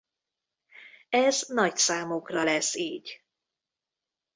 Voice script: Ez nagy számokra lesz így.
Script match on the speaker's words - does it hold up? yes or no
yes